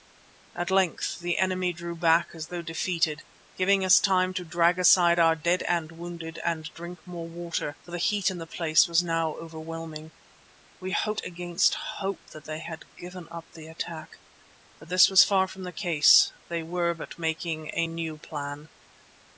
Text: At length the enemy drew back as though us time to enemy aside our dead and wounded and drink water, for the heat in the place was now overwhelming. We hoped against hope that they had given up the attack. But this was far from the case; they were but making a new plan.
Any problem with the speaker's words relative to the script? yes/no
yes